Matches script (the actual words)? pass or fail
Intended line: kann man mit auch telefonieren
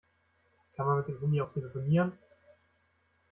fail